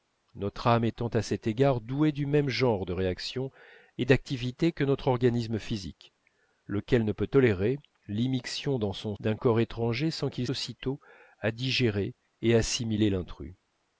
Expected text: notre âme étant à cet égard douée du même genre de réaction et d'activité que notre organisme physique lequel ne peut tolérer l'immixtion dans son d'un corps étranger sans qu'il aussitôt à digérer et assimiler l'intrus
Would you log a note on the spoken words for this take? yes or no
no